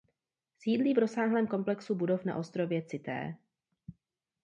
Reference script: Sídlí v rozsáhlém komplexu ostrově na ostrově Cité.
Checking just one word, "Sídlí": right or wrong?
right